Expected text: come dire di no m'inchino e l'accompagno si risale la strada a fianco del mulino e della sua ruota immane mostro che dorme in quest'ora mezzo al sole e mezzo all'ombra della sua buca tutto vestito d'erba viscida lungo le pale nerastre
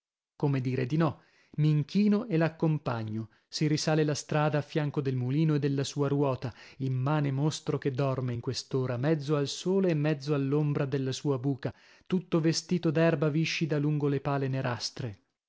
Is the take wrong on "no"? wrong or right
right